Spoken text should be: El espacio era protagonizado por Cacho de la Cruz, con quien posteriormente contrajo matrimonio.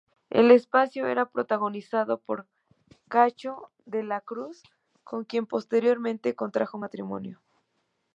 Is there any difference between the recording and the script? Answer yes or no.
no